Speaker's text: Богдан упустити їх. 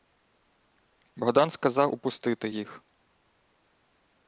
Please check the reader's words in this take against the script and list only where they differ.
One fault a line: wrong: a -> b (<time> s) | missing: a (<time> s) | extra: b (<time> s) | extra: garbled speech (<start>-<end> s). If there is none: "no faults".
extra: сказав (1.5 s)